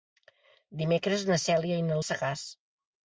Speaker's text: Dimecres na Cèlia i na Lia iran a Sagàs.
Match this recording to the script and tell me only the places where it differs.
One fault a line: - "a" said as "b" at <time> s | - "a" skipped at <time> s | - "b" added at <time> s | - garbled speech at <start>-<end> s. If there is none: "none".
- "Lia iran" skipped at 2.0 s